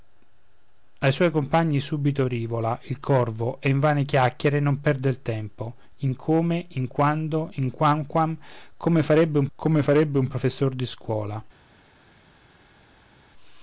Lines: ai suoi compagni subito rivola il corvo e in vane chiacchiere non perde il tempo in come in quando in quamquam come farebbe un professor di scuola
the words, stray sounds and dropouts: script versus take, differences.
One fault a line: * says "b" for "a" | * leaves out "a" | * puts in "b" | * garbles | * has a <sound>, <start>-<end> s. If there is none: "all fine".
* puts in "come farebbe un"